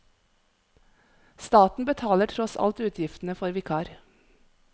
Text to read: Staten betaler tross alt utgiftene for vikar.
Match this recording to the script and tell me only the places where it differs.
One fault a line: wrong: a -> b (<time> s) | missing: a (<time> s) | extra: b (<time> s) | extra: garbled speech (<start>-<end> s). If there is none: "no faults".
no faults